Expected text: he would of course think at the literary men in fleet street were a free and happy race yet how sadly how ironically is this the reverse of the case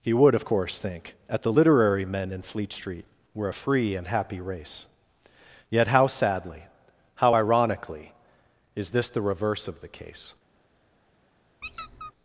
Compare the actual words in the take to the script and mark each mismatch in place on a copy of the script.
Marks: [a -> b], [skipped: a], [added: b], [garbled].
he would of course think at the literary men in fleet street were a free and happy race yet how sadly how ironically is this the reverse of the case